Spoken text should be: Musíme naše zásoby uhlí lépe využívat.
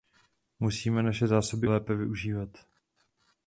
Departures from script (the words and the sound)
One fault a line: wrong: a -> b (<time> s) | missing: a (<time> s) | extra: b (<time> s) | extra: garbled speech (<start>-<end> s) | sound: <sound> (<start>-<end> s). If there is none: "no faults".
missing: uhlí (1.7 s)